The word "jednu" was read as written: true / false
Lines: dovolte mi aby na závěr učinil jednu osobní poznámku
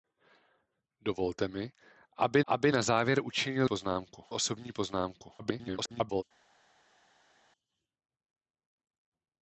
false